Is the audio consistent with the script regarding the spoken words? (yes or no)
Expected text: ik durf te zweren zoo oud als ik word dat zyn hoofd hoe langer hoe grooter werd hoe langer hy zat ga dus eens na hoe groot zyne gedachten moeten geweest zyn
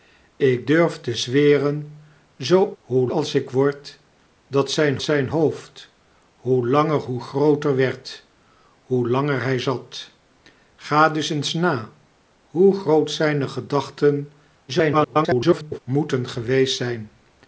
no